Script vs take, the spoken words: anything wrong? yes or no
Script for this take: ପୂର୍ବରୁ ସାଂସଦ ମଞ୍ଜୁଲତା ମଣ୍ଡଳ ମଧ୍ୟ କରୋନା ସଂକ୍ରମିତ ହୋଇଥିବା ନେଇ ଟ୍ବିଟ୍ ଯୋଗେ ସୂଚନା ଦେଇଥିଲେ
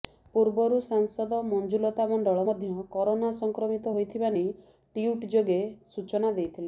no